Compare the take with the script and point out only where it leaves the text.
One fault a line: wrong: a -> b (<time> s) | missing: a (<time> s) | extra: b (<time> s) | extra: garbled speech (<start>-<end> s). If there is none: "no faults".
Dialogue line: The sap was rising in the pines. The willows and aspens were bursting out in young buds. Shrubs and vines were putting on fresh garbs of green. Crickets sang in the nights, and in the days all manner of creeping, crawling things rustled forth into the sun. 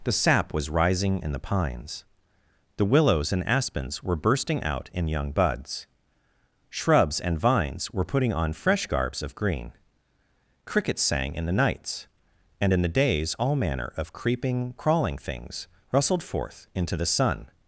no faults